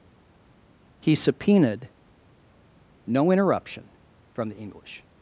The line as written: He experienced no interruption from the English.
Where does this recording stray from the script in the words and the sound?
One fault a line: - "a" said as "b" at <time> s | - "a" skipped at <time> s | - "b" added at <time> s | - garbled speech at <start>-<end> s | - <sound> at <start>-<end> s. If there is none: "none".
- "experienced" said as "subpoenaed" at 1.2 s